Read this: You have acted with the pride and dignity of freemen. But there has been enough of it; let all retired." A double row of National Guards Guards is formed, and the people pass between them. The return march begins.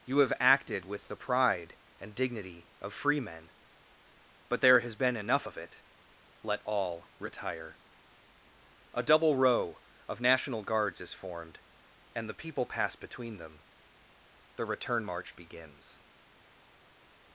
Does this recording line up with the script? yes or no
no